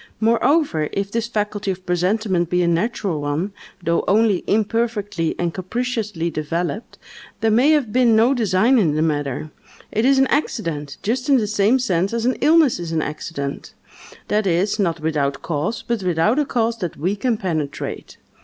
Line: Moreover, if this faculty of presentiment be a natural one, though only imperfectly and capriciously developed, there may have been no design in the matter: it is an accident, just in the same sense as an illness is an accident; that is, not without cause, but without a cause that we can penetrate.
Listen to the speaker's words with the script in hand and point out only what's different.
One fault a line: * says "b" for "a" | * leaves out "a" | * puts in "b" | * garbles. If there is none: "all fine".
all fine